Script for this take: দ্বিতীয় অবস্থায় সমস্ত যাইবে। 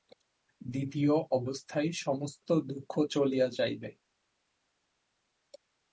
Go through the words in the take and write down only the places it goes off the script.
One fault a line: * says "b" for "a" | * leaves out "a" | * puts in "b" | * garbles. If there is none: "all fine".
* puts in "দুঃখ চলিয়া"